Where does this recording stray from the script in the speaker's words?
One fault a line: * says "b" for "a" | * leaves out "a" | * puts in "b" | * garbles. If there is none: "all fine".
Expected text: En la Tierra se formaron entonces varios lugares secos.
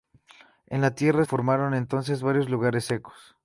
* leaves out "se"